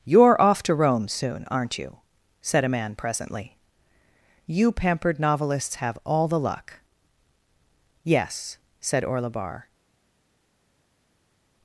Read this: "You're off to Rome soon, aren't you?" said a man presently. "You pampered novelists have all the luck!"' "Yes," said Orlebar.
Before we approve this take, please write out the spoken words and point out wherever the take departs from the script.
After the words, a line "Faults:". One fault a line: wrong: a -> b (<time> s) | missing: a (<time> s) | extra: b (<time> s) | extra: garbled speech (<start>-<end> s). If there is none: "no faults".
"You're off to Rome soon, aren't you?" said a man presently. "You pampered novelists have all the luck!"' "Yes," said Orlebar.
Faults:
no faults